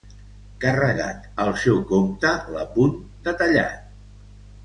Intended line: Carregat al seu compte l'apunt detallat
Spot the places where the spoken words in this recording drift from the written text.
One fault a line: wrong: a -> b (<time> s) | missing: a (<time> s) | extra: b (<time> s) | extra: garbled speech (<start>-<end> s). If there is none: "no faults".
no faults